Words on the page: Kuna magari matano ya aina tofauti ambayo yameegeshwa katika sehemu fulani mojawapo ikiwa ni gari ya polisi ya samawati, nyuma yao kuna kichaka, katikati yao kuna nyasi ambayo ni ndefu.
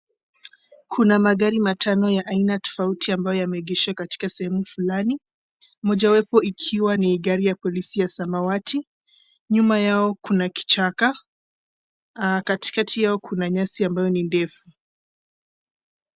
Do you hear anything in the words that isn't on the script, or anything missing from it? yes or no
no